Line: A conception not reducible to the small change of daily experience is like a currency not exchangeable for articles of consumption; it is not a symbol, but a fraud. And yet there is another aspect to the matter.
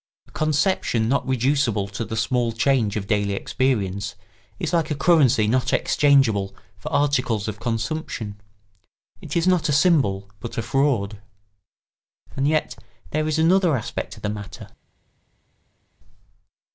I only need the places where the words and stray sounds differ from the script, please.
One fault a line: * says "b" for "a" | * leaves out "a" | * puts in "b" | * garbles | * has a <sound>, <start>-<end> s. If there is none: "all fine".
all fine